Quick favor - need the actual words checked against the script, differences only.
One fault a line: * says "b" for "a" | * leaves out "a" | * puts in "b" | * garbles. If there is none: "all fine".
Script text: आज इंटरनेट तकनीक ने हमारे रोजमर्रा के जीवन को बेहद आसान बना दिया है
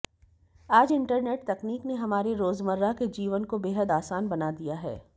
all fine